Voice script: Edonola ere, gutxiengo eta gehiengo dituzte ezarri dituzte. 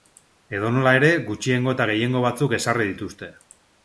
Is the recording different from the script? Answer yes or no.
yes